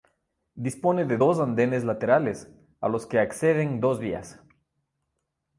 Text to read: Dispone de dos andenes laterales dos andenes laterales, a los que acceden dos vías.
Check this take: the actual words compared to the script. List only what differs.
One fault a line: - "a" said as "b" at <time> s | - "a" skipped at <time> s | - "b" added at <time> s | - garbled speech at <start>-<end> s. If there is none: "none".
- "dos andenes laterales" skipped at 2.5 s